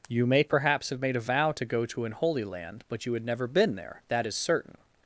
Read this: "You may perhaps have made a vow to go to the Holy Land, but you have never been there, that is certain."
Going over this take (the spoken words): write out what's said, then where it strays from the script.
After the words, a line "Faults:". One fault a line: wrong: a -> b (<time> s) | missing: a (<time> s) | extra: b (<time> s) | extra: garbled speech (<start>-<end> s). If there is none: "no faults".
"You may perhaps have made a vow to go to an Holy Land, but you had never been there, that is certain."
Faults:
wrong: the -> an (2.0 s)
wrong: have -> had (3.1 s)